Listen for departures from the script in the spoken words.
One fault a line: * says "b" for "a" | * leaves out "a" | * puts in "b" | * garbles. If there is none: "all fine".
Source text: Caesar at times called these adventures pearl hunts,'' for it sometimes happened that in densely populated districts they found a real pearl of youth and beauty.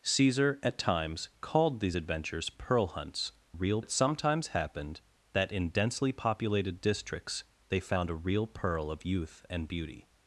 * says "real" for "for"